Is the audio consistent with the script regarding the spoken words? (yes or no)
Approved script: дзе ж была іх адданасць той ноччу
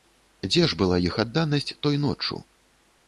yes